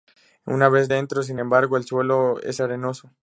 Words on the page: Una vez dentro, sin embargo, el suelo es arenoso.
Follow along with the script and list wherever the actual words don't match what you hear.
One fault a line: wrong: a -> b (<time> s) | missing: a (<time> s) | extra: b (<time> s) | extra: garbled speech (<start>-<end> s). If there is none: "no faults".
no faults